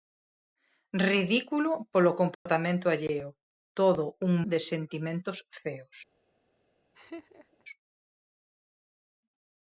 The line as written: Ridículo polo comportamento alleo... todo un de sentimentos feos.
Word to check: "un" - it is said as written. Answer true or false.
true